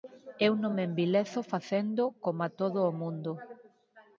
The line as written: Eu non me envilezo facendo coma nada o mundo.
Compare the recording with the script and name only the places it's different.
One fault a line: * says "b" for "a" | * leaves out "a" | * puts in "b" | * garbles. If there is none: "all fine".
* says "todo" for "nada"